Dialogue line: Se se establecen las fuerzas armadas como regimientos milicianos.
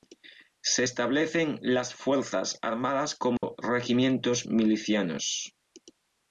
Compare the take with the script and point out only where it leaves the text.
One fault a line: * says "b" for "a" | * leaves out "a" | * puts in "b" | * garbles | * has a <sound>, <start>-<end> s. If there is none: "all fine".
* leaves out "se"
* has a dropout, 3.4-3.4 s